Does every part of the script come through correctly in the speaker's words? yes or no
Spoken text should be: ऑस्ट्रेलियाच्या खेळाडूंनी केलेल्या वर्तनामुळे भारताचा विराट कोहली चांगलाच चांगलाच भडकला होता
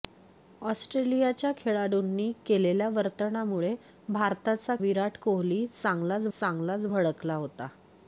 yes